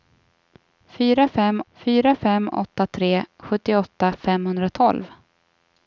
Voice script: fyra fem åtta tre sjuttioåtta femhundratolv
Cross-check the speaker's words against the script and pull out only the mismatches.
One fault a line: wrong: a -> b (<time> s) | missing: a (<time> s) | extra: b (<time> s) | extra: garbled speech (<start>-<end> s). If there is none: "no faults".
extra: fyra fem (1.7 s)